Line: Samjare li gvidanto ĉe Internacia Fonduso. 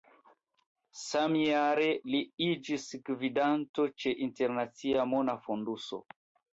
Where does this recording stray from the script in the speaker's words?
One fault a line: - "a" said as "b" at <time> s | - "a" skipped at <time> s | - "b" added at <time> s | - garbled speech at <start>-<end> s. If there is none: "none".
- "iĝis" added at 2.5 s
- "Mona" added at 5.2 s